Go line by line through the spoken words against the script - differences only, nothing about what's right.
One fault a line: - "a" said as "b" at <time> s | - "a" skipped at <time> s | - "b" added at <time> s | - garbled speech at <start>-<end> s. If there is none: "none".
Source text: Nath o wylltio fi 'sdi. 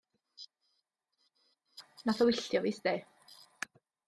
none